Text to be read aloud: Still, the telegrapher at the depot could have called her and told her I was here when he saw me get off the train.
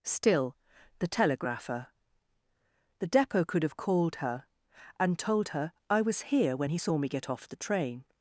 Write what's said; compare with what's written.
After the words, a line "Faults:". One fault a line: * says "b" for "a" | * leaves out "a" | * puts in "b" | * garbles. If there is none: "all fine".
Still, the telegrapher the depot could have called her and told her I was here when he saw me get off the train.
Faults:
* leaves out "at"